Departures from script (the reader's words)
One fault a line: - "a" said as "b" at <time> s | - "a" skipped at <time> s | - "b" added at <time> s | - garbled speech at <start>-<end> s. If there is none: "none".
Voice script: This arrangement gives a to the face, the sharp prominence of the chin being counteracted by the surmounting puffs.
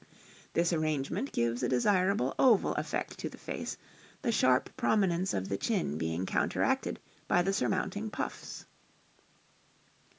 - "desirable oval effect" added at 1.7 s